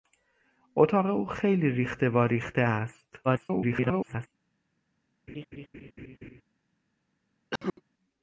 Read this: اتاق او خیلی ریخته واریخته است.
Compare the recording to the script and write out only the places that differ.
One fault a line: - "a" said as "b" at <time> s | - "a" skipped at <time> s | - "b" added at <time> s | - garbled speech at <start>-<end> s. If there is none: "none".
- garbled speech at 3.2-4.3 s